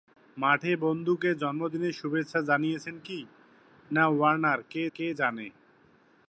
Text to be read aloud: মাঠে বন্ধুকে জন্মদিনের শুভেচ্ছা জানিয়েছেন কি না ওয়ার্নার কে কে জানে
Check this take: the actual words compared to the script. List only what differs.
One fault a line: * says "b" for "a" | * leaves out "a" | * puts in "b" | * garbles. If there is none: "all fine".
all fine